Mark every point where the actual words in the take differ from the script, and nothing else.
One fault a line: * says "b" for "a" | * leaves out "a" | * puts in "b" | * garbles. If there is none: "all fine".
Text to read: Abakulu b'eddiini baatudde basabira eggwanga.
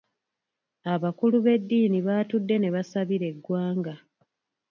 * puts in "ne"